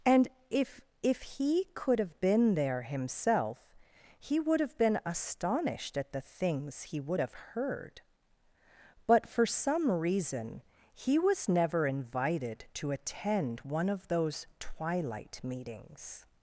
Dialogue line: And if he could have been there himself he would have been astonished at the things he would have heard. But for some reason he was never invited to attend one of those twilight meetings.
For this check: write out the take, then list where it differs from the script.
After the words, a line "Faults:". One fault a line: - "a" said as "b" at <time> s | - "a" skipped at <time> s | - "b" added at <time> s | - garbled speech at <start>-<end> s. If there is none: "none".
And if if he could have been there himself he would have been astonished at the things he would have heard. But for some reason he was never invited to attend one of those twilight meetings.
Faults:
- "if" added at 1.0 s